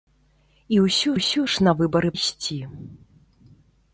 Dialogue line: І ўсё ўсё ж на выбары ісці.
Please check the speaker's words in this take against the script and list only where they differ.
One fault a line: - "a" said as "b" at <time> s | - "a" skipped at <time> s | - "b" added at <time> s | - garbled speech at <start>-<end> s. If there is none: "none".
none